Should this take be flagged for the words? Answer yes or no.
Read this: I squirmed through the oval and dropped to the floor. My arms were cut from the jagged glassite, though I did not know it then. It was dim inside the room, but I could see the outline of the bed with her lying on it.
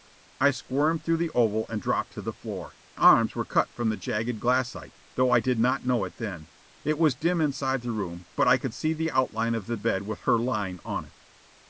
yes